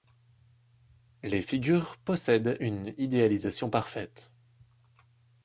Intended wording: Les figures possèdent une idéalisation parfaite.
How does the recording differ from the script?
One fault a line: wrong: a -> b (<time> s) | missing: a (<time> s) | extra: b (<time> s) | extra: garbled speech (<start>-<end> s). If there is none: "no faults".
no faults